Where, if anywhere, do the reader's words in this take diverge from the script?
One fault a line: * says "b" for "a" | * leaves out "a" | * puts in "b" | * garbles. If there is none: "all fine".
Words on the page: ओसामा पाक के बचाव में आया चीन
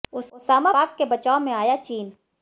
all fine